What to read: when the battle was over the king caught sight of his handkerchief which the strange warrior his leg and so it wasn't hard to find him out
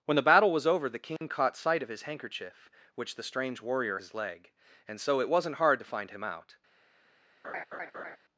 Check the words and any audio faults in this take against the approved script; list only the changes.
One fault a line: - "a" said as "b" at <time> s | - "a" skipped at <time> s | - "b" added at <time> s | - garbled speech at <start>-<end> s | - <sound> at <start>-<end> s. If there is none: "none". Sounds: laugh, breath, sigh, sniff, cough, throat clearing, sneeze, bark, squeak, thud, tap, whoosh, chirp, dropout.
- dropout at 1.2-1.2 s
- laugh at 7.4-8.2 s